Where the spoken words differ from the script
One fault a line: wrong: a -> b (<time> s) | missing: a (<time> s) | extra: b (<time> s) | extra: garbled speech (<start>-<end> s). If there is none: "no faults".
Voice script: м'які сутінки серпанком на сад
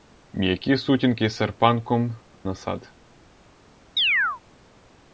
no faults